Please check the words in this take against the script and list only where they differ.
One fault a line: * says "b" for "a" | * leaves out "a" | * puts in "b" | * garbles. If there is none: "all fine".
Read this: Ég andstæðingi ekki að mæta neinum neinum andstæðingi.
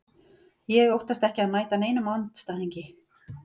* says "óttast" for "andstæðingi"
* leaves out "neinum"